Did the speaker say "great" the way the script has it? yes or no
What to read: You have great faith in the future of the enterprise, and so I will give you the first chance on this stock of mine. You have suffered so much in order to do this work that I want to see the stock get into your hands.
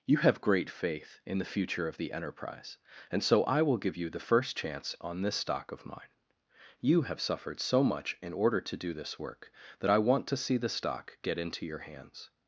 yes